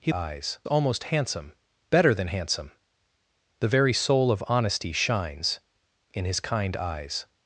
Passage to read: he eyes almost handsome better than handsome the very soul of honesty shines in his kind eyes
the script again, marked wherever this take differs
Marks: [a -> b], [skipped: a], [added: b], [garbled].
he eyes almost handsome better than handsome the very soul of honesty shines in his kind eyes